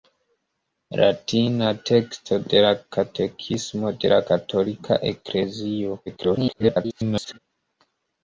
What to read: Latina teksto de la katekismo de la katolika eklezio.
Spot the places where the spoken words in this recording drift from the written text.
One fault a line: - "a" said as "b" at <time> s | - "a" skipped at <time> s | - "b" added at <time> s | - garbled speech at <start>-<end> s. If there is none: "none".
- garbled speech at 6.1-7.4 s